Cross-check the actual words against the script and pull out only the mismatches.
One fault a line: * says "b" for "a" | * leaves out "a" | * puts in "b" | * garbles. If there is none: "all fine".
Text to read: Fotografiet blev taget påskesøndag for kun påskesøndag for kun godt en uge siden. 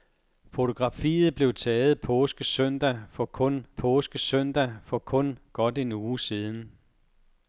all fine